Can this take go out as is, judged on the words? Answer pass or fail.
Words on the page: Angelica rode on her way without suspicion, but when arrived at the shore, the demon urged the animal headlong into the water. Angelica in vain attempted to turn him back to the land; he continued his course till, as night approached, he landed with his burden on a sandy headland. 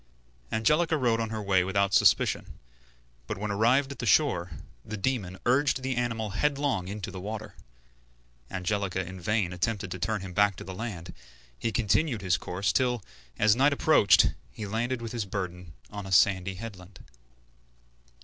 pass